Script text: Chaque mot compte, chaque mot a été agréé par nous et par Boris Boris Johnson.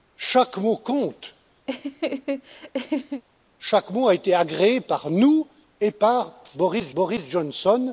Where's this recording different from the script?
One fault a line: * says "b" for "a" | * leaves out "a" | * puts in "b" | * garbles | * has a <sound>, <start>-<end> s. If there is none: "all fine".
* has a laugh, 1.7-3.2 s